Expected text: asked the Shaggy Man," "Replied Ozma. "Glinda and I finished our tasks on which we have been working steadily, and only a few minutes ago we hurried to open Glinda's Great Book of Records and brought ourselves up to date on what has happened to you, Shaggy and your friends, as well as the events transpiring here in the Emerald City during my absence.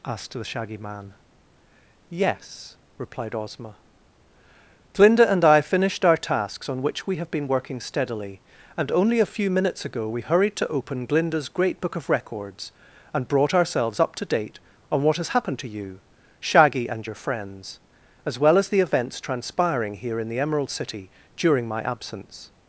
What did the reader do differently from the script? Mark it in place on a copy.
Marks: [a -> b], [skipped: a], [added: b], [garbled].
asked the Shaggy Man," [added: Yes] "Replied Ozma. "Glinda and I finished our tasks on which we have been working steadily, and only a few minutes ago we hurried to open Glinda's Great Book of Records and brought ourselves up to date on what has happened to you, Shaggy and your friends, as well as the events transpiring here in the Emerald City during my absence.